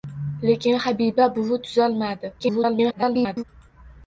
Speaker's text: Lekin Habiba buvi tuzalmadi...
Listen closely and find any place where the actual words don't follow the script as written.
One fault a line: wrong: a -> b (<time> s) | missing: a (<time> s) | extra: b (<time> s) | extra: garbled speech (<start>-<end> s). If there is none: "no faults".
extra: garbled speech (2.4-3.4 s)